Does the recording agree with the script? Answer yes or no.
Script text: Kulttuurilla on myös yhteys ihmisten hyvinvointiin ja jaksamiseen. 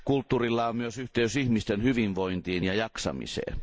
yes